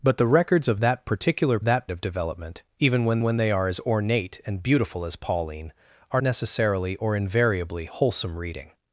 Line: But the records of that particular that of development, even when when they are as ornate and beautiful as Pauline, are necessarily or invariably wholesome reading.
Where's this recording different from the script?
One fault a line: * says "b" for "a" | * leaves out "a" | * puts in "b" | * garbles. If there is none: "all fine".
all fine